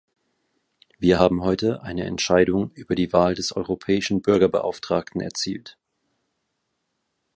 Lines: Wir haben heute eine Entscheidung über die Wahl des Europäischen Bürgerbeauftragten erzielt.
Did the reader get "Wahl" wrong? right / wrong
right